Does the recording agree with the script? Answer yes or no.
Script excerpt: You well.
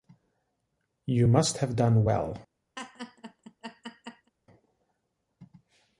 no